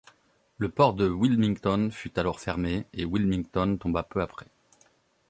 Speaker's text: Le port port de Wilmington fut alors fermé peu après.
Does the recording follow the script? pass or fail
fail